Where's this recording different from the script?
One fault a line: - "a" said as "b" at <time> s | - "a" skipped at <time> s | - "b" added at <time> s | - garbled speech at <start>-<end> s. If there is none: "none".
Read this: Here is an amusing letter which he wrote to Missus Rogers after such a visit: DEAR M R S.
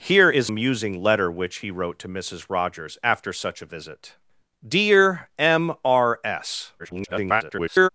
- "an" skipped at 0.5 s
- garbled speech at 6.8-7.9 s